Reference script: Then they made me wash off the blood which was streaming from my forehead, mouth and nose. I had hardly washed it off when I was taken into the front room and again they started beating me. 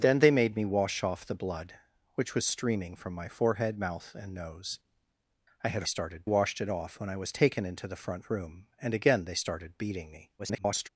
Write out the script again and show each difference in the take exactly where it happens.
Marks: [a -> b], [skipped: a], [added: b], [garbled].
Then they made me wash off the blood which was streaming from my forehead, mouth and nose. I had [hardly -> started] washed it off when I was taken into the front room and again they started beating me. [garbled]